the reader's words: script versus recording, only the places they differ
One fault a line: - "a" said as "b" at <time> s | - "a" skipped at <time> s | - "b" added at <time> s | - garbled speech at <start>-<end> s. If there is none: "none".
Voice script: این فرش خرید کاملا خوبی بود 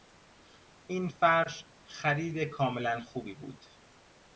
none